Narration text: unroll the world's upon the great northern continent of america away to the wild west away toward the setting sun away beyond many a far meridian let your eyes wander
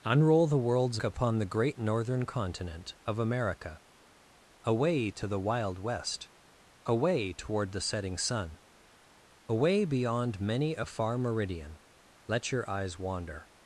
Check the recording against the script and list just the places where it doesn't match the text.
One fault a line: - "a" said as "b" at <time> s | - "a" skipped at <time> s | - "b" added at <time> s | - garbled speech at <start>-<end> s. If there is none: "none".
none